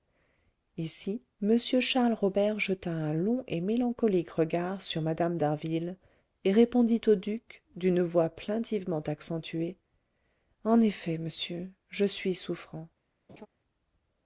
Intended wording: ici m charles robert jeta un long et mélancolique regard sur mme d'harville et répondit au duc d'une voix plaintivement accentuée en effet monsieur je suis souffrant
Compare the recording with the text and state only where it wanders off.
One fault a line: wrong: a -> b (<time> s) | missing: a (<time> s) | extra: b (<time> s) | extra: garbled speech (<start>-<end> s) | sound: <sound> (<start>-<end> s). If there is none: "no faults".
sound: laugh (13.3-13.5 s)